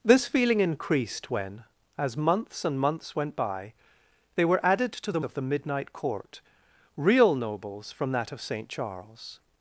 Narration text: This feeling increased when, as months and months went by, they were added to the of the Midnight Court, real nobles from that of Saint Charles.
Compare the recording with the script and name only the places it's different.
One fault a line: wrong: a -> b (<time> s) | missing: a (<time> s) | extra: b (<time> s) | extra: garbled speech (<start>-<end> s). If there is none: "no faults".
no faults